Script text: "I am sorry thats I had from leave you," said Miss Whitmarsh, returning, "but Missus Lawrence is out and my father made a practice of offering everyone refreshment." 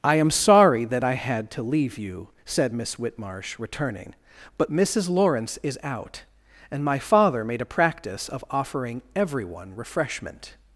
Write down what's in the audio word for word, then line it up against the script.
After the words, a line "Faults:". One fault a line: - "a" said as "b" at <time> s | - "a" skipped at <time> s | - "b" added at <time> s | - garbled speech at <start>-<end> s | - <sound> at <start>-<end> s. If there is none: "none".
"I am sorry that I had to leave you," said Miss Whitmarsh, returning, "but Missus Lawrence is out and my father made a practice of offering everyone refreshment."
Faults:
- "thats" said as "that" at 0.8 s
- "from" said as "to" at 1.5 s